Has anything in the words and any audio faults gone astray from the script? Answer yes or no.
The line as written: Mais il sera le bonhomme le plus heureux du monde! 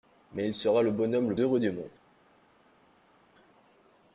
yes